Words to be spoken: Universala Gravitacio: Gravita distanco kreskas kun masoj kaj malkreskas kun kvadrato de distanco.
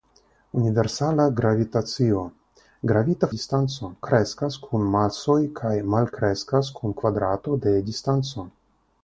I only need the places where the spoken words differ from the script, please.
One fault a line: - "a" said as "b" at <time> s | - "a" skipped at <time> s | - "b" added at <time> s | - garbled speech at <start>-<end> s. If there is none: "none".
none